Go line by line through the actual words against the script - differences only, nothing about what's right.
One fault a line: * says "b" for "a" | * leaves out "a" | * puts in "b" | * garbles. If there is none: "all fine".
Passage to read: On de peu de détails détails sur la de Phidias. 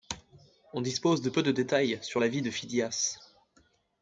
* puts in "dispose"
* leaves out "détails"
* puts in "vie"